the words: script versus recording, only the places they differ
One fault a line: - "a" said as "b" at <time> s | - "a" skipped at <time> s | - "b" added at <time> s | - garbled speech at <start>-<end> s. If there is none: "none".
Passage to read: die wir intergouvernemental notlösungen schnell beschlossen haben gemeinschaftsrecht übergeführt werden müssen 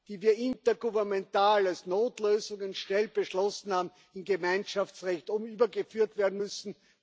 - "als" added at 1.7 s
- "in" added at 4.1 s